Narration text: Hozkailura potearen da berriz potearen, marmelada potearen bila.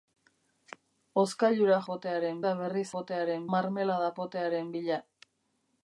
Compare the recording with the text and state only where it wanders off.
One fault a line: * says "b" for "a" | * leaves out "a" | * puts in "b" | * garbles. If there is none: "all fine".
all fine